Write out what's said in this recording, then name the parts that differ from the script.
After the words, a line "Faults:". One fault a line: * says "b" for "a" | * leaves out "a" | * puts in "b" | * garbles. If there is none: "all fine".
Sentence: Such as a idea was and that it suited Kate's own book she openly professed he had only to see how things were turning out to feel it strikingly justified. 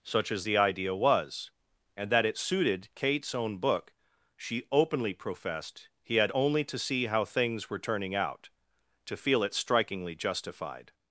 Such as the idea was and that it suited Kate's own book she openly professed he had only to see how things were turning out to feel it strikingly justified.
Faults:
* says "the" for "a"